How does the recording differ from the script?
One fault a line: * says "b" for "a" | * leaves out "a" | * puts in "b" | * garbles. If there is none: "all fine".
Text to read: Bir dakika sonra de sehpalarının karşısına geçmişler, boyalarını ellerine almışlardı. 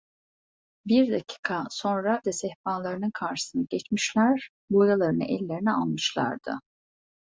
all fine